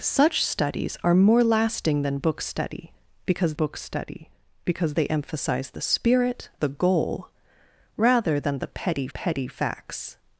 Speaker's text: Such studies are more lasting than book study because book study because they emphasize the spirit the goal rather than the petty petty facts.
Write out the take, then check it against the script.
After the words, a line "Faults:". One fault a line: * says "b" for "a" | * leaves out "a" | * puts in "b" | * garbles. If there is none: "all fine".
Such studies are more lasting than book study because book study because they emphasize the spirit the goal rather than the petty petty facts.
Faults:
all fine